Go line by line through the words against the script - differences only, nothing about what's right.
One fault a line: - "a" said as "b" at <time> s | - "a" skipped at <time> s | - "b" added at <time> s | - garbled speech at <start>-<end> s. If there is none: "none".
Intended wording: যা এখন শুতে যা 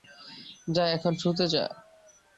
none